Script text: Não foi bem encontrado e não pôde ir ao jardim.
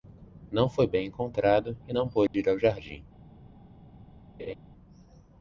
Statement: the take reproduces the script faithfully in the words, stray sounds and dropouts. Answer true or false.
false